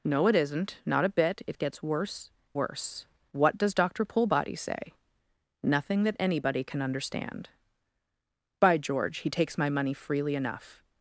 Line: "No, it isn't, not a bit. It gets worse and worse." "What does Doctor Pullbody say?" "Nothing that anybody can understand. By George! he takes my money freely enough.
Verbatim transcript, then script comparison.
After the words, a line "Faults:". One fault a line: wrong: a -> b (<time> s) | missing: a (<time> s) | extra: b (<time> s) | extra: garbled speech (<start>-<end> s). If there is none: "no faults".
"No, it isn't, not a bit. It gets worse worse." "What does Doctor Pullbody say?" "Nothing that anybody can understand. By George! he takes my money freely enough.
Faults:
missing: and (2.3 s)